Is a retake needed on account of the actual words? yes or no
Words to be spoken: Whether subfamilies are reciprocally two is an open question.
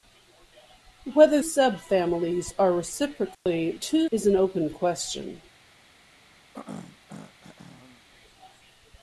no